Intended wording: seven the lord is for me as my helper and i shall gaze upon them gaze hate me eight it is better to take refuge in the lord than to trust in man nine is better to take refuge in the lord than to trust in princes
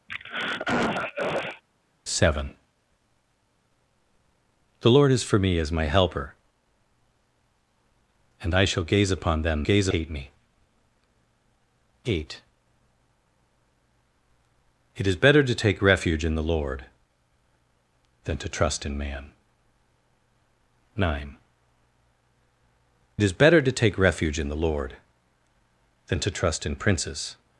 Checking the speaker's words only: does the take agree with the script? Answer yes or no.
yes